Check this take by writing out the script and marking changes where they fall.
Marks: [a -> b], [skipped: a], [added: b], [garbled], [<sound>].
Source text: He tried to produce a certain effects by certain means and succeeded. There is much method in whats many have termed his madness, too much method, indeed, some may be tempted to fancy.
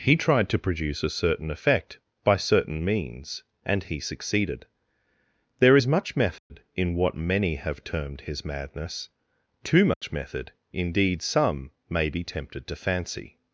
He tried to produce a certain [effects -> effect] by certain means and [added: he] succeeded. There is much method [dropout] in [whats -> what] many have termed his madness, too much [dropout] method, indeed, some may be tempted to fancy.